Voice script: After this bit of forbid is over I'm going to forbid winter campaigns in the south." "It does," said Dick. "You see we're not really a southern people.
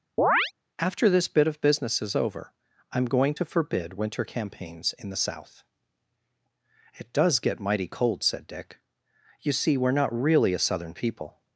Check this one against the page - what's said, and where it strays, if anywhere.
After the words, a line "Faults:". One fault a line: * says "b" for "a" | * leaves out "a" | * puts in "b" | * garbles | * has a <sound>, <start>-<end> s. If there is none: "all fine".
After this bit of business is over I'm going to forbid winter campaigns in the south." "It does get mighty cold," said Dick. "You see we're not really a southern people.
Faults:
* has a chirp, 0.2-0.5 s
* says "business" for "forbid"
* puts in "get mighty cold"